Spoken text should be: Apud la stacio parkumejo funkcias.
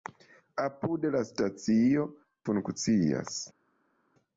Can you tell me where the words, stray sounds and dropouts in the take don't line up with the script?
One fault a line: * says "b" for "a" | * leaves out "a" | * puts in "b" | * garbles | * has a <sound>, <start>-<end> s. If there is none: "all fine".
* leaves out "parkumejo"